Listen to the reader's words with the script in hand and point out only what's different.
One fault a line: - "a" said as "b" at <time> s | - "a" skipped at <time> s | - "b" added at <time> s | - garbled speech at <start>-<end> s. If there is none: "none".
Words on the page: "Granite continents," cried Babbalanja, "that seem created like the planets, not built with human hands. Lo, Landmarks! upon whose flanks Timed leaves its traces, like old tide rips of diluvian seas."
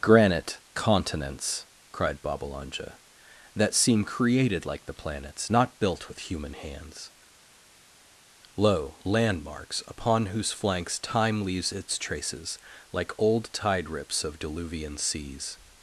- "Timed" said as "Time" at 11.0 s